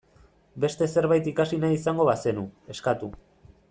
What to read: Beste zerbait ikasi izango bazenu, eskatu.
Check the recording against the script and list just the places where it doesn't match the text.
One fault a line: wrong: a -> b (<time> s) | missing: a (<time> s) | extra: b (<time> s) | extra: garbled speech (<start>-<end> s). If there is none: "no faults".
extra: nahi (1.6 s)